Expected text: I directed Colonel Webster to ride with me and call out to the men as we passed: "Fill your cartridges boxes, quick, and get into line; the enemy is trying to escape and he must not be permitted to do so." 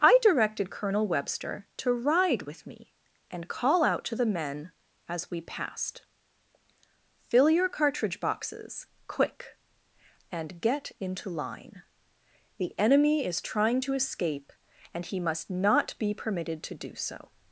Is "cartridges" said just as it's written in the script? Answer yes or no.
no